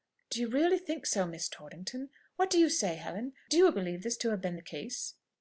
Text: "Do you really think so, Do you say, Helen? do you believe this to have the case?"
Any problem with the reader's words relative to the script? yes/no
yes